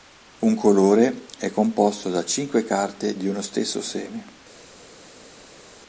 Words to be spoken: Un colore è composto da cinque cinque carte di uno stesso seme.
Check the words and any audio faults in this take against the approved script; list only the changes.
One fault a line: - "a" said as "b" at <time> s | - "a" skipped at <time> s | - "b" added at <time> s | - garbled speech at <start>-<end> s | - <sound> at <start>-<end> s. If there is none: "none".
- "cinque" skipped at 2.6 s